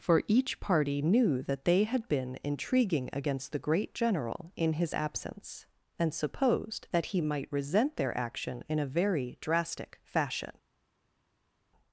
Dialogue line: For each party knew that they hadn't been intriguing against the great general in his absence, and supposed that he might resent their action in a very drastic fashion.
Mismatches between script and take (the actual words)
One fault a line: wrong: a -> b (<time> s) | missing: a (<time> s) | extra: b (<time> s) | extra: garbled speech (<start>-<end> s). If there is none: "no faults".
wrong: hadn't -> had (1.8 s)